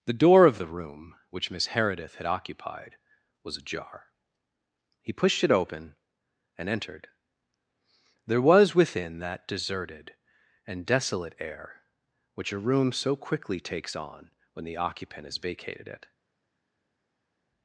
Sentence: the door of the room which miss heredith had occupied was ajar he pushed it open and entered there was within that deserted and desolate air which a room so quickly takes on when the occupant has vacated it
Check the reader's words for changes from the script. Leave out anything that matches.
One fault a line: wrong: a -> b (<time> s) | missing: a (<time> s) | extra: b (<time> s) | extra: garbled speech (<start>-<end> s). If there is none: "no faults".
no faults